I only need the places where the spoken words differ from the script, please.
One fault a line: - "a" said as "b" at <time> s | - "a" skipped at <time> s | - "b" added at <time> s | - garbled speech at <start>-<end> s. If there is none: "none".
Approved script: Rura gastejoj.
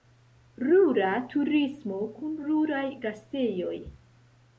- "turismo kun ruraj" added at 1.3 s